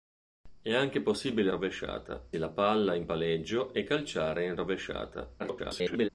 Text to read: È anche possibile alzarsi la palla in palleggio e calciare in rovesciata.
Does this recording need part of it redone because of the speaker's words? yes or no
yes